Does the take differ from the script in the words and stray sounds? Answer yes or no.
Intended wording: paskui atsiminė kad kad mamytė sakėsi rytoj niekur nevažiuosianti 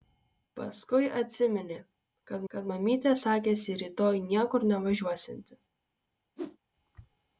yes